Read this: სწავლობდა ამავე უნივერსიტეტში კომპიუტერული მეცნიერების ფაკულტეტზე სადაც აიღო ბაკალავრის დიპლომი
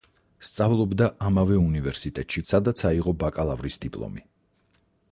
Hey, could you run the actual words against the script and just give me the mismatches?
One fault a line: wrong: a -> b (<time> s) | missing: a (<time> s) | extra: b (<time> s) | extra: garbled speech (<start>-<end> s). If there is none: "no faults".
missing: კომპიუტერული მეცნიერების ფაკულტეტზე (2.4 s)